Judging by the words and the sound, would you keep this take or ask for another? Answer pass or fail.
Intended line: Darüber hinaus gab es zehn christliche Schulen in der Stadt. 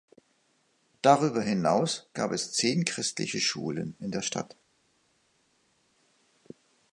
pass